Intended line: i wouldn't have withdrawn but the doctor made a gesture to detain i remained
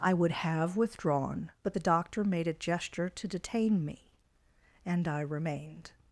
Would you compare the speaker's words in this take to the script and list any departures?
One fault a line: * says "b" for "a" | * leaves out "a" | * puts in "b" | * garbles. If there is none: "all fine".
* says "would" for "wouldn't"
* puts in "me and"